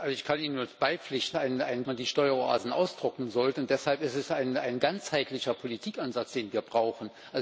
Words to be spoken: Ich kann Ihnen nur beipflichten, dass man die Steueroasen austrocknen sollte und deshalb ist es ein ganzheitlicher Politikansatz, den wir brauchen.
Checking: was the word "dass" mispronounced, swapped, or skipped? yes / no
yes